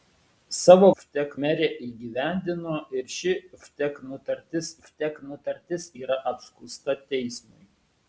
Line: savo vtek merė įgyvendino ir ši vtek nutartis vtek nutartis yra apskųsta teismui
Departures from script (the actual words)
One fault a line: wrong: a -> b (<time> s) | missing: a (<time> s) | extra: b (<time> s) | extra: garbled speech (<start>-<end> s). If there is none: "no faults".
no faults